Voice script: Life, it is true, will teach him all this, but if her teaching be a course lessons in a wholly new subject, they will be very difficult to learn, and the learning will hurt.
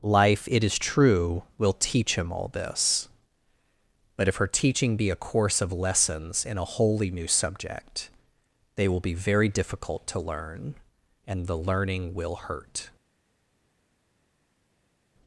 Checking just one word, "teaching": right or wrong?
right